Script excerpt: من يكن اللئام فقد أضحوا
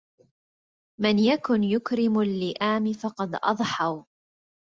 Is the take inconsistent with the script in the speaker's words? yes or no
yes